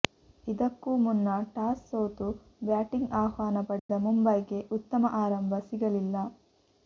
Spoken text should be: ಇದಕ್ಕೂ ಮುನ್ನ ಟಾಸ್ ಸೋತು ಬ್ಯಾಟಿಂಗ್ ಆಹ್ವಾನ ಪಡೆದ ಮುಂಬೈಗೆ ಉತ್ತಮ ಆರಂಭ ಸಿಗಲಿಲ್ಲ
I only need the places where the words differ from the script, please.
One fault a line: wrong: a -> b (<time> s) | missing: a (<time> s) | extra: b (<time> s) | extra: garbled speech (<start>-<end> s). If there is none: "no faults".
no faults